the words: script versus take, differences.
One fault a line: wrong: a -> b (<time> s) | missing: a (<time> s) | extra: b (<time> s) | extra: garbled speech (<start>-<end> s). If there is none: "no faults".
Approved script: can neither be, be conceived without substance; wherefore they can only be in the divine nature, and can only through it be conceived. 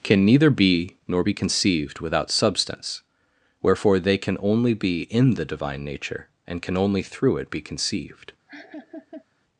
extra: nor (1.1 s)